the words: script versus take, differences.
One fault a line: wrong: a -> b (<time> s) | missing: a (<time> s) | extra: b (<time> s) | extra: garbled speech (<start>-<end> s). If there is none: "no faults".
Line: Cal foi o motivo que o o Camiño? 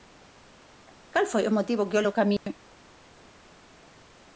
no faults